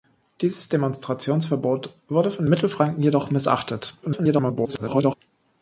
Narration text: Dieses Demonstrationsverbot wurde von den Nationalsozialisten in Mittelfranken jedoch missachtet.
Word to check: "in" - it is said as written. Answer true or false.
false